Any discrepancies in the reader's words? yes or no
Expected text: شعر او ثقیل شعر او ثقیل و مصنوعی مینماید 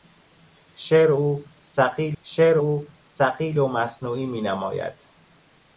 no